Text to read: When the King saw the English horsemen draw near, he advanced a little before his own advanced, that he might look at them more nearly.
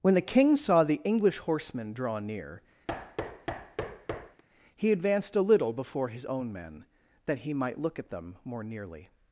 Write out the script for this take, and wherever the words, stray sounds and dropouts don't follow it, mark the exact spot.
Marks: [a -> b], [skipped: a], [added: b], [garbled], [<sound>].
When the King saw the English horsemen draw near, [thud] he advanced a little before his own [advanced, -> men] that he might look at them more nearly.